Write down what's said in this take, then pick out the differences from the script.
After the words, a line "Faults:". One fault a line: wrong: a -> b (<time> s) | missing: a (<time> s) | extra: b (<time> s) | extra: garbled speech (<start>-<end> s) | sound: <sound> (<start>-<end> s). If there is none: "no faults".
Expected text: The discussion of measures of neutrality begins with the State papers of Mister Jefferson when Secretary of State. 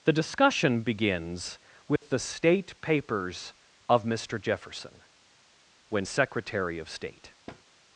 The discussion begins with the State papers of Mister Jefferson when Secretary of State.
Faults:
missing: of measures of neutrality (0.8 s)
sound: dropout (2.0-2.0 s)
sound: thud (7.5-7.6 s)